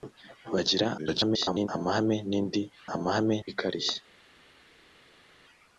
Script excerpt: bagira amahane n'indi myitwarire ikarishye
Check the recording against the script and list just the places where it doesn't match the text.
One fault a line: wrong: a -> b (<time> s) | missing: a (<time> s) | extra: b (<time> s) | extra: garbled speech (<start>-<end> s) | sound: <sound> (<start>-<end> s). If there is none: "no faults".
extra: garbled speech (1.0-1.7 s)
wrong: myitwarire -> amahane (2.9 s)